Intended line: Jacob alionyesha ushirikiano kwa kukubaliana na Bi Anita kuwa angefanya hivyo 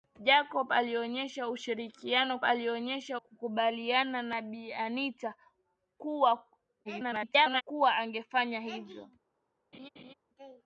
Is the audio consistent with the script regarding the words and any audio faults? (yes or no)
no